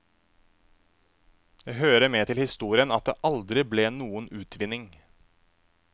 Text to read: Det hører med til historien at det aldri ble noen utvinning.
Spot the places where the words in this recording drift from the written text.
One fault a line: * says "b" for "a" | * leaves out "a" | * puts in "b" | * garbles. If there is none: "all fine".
all fine